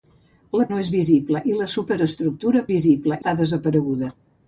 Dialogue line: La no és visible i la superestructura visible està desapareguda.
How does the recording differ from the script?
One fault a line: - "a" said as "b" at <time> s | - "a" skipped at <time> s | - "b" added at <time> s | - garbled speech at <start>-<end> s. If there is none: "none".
none